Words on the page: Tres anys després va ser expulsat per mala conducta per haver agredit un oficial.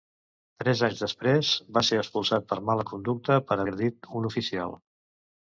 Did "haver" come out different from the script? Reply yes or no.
yes